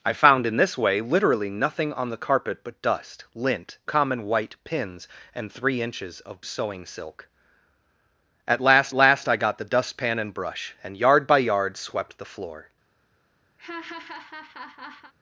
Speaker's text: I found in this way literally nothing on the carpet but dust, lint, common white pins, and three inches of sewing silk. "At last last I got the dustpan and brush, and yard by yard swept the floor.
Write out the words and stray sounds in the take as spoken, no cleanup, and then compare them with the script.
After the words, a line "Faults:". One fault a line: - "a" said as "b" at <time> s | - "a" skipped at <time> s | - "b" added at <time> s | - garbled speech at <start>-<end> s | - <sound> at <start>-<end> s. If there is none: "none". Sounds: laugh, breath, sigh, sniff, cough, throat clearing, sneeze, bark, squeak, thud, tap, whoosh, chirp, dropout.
I found in this way literally nothing on the carpet but dust, lint, common white pins, and three inches of sewing silk. "At last last I got the dustpan and brush, and yard by yard swept the floor.
Faults:
- laugh at 13.6-15.1 s